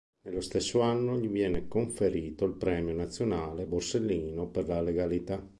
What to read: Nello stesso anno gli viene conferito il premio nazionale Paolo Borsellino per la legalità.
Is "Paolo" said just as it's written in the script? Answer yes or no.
no